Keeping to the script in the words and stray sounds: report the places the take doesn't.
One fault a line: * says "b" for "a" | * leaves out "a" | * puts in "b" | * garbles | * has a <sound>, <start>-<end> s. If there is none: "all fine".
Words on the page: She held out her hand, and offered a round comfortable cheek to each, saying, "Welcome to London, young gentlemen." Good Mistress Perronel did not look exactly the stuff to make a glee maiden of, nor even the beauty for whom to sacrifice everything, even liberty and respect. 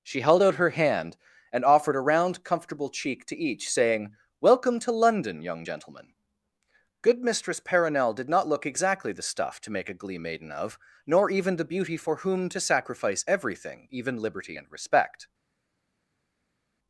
all fine